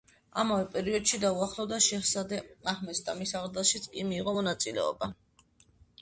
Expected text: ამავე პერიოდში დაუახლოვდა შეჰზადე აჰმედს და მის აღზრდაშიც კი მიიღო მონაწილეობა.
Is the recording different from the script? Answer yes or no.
no